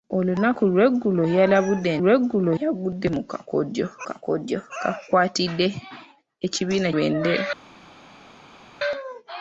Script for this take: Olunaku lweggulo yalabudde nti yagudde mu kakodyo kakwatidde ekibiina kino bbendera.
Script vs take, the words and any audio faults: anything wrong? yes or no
yes